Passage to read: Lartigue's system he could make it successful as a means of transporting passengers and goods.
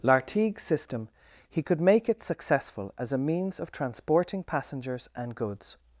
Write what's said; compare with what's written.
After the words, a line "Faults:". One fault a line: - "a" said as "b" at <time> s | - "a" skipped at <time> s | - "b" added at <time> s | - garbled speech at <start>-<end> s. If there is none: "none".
Lartigue's system he could make it successful as a means of transporting passengers and goods.
Faults:
none